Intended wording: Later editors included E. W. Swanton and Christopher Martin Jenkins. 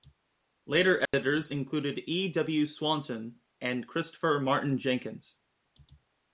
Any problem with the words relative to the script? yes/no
no